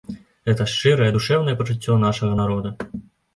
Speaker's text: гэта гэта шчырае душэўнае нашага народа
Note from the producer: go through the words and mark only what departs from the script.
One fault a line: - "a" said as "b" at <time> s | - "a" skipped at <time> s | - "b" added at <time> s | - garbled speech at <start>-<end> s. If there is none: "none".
- "гэта" skipped at 0.7 s
- "пачуццё" added at 1.6 s